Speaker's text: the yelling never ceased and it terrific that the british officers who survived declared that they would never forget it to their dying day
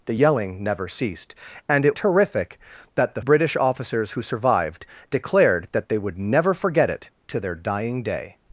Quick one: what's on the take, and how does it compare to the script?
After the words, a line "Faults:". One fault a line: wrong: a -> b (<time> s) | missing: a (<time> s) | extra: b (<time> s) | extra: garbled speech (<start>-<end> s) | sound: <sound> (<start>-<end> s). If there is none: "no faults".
the yelling never ceased and it terrific that the british officers who survived declared that they would never forget it to their dying day
Faults:
no faults